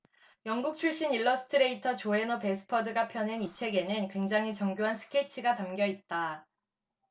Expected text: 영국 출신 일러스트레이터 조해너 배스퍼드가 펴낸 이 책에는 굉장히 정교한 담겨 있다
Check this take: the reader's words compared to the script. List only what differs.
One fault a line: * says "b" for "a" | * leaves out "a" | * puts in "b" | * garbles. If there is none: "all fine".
* puts in "스케치가"